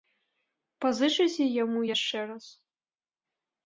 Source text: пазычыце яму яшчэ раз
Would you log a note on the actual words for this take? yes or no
no